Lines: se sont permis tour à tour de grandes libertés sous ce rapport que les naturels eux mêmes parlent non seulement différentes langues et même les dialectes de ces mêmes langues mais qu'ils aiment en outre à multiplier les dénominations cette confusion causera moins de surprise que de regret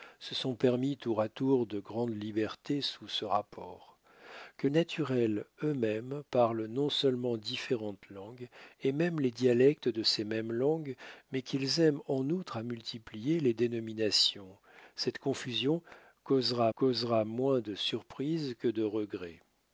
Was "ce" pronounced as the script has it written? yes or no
yes